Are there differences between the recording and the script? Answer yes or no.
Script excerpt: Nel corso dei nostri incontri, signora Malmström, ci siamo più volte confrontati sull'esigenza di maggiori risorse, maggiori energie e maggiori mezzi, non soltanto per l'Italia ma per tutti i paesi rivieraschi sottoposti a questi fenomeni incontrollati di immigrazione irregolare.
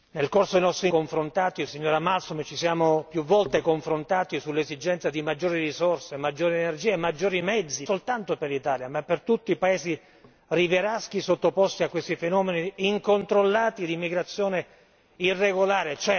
yes